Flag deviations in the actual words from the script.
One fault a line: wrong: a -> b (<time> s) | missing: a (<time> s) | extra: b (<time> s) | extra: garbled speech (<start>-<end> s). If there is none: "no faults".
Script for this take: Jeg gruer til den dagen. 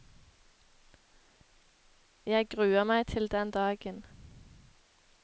extra: meg (2.8 s)